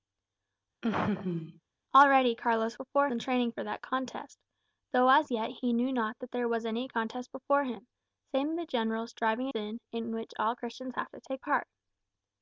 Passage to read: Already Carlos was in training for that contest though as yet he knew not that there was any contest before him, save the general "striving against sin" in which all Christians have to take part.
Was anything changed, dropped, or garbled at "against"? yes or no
yes